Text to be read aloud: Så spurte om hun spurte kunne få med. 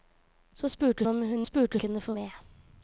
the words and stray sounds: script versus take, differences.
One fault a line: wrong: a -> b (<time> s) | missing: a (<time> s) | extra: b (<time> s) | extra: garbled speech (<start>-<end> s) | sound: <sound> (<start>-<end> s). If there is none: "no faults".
no faults